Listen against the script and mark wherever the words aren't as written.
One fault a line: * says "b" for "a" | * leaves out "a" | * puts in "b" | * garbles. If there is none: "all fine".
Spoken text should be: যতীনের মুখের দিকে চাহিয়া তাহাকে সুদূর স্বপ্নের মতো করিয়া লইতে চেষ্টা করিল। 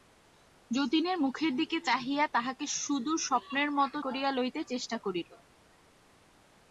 all fine